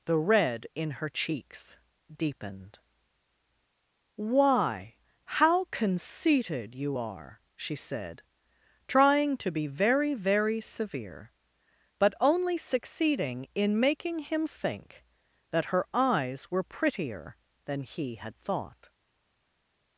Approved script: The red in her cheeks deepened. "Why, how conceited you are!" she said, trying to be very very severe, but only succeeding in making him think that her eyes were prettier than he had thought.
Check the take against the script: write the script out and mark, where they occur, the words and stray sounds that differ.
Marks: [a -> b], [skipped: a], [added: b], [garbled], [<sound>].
The red in her cheeks deepened. "Why, how conceited you are!" she said, trying to be very very severe, but only succeeding in making him think that her eyes were prettier than he had thought.